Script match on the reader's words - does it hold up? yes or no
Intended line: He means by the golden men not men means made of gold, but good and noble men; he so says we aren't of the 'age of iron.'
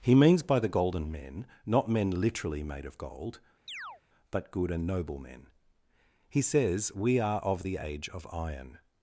no